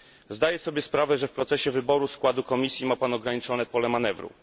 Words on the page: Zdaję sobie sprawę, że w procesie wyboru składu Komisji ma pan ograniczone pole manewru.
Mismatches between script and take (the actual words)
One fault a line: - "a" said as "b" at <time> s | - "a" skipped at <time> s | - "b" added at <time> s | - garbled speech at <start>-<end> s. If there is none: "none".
none